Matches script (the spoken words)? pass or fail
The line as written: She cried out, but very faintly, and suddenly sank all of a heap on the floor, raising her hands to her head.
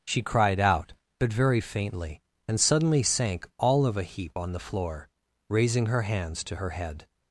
pass